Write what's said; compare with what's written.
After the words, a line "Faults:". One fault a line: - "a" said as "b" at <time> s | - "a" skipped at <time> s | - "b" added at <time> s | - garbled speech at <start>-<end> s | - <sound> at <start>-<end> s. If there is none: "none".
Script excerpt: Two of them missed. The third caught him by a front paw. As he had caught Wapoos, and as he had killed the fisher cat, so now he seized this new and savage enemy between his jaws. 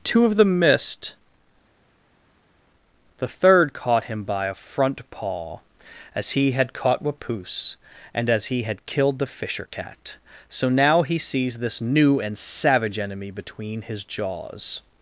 Two of them missed. The third caught him by a front paw. As he had caught Wapoos, and as he had killed the fisher cat, so now he sees this new and savage enemy between his jaws.
Faults:
- "seized" said as "sees" at 11.2 s